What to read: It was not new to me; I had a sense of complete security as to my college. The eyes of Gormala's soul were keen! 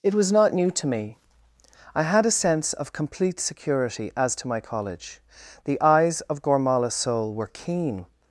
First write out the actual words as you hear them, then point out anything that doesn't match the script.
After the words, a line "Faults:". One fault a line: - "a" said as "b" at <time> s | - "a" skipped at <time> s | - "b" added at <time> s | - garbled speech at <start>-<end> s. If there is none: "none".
It was not new to me; I had a sense of complete security as to my college. The eyes of Gormala's soul were keen!
Faults:
none